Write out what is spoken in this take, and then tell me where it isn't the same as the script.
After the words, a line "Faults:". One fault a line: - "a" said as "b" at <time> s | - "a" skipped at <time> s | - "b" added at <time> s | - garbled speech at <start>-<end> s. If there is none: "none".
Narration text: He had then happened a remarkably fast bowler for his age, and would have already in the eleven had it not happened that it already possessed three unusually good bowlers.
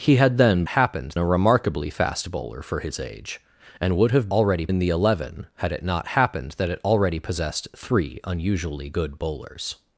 He had then happened a remarkably fast bowler for his age, and would have already in the eleven had it not happened that it already possessed three unusually good bowlers.
Faults:
none